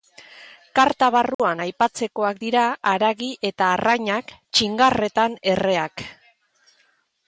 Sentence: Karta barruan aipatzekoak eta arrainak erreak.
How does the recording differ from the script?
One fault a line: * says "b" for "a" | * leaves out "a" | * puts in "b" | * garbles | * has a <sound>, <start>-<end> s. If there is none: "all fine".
* has a dropout, 1.3-1.4 s
* puts in "dira haragi"
* puts in "txingarretan"